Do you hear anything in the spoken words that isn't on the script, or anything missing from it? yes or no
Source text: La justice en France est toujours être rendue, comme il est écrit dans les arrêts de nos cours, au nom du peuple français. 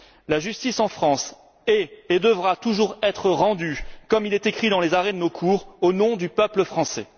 yes